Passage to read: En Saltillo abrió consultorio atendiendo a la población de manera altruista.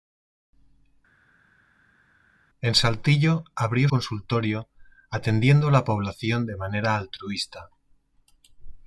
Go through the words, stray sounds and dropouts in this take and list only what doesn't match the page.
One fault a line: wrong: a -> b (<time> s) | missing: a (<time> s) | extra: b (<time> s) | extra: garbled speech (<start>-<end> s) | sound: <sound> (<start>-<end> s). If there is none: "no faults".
no faults